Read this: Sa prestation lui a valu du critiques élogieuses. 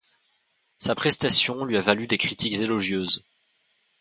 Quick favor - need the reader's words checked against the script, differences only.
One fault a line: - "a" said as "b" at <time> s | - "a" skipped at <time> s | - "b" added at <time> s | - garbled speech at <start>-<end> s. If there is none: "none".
- "du" said as "des" at 2.1 s